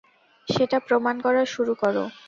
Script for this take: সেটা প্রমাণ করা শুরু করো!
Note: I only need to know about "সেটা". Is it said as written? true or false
true